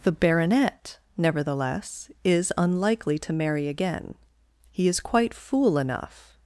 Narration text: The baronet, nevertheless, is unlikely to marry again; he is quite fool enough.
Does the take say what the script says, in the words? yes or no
yes